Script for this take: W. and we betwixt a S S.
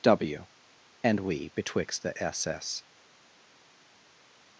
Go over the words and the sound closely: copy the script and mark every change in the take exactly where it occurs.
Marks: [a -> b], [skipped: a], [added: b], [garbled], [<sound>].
W. and we betwixt [a -> the] S S.